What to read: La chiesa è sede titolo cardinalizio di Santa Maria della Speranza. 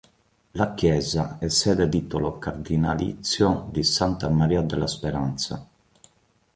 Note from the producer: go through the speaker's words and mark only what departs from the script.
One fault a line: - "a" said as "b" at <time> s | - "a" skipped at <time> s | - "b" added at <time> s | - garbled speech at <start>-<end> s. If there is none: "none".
none